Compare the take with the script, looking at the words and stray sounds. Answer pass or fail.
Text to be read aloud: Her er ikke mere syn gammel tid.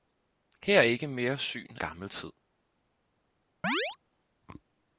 fail